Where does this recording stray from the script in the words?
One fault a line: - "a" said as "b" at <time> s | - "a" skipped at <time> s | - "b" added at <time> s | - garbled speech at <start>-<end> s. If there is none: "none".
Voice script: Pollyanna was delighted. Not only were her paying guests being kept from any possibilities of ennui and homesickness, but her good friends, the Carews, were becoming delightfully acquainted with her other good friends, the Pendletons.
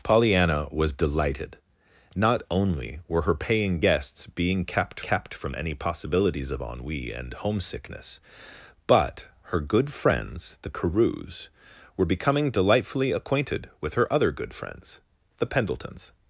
- "kept" added at 5.0 s